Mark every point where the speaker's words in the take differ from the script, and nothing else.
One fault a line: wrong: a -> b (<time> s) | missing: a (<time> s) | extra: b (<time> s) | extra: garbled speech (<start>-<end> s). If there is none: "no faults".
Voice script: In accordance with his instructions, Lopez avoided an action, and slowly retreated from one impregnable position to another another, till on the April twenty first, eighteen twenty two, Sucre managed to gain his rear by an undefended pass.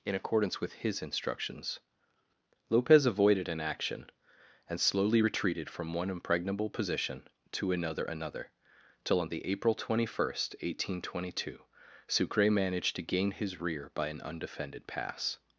no faults